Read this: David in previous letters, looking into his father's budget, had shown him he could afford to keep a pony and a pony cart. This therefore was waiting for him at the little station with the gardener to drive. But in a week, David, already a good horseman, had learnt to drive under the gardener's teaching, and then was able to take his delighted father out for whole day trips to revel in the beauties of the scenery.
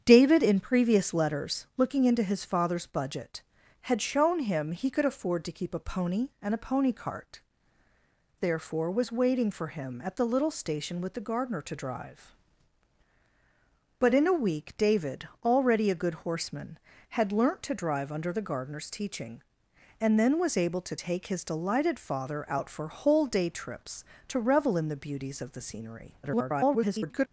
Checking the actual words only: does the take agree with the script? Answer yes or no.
no